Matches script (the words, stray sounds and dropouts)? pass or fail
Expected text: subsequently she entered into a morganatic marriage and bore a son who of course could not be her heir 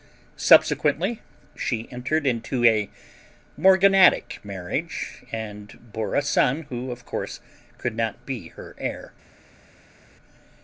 pass